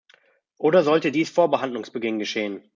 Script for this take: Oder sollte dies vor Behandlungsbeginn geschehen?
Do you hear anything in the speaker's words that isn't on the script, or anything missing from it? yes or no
no